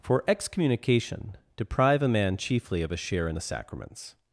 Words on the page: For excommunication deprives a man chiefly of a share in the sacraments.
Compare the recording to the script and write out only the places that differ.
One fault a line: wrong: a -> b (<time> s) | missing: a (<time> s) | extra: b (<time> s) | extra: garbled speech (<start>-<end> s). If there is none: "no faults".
wrong: deprives -> deprive (1.6 s)